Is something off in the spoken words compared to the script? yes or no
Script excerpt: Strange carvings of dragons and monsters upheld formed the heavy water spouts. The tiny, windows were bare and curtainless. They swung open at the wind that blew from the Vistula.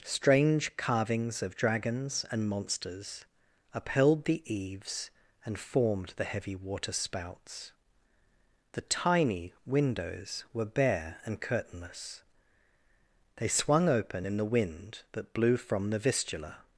yes